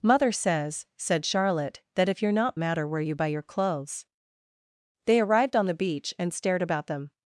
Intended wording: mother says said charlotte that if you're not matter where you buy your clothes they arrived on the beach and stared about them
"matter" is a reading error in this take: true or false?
false